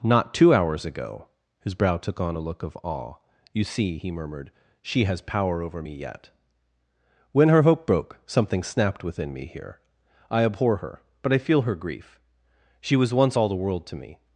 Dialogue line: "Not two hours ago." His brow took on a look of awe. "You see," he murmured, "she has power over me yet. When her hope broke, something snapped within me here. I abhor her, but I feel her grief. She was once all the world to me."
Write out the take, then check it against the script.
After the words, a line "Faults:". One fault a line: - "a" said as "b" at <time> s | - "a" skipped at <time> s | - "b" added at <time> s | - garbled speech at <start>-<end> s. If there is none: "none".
"Not two hours ago." His brow took on a look of awe. "You see," he murmured, "she has power over me yet. When her hope broke, something snapped within me here. I abhor her, but I feel her grief. She was once all the world to me."
Faults:
none